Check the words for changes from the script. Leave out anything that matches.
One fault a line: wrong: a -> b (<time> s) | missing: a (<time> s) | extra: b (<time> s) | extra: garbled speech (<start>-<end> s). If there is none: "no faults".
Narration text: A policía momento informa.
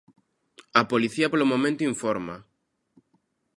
extra: polo (1.3 s)